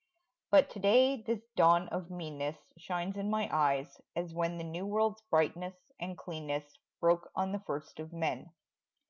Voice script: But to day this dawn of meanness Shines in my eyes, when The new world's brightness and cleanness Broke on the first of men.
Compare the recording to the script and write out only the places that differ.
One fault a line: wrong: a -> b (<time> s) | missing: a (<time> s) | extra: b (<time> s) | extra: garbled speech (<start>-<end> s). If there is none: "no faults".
extra: as (4.2 s)